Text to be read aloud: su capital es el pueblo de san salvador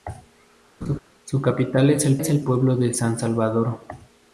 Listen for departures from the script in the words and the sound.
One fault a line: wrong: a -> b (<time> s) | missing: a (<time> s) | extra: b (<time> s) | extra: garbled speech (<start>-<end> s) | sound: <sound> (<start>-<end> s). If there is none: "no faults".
sound: laugh (0.8-1.0 s)
extra: es el (2.2 s)